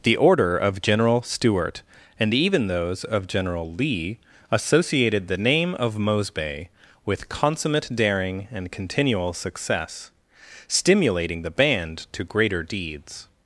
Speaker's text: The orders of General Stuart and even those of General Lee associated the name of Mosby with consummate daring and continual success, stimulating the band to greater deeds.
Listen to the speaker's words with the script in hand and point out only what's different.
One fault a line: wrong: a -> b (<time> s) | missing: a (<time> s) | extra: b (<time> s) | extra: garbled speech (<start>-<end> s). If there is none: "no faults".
wrong: orders -> order (0.2 s)